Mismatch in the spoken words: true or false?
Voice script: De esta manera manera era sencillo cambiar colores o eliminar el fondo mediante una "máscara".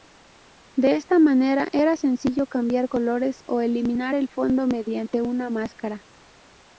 true